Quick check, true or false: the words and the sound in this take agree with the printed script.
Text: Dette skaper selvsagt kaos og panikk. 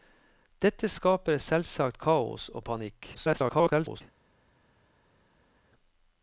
false